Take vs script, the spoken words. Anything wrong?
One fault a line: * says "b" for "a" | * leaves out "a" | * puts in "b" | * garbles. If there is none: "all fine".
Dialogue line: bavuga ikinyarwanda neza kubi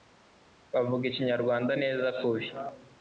all fine